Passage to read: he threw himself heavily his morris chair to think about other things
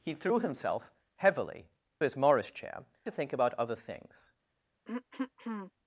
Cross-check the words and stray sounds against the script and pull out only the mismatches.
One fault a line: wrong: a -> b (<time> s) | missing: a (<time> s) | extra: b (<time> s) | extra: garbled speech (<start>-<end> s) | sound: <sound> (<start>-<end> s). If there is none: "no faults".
sound: throat clearing (4.9-5.7 s)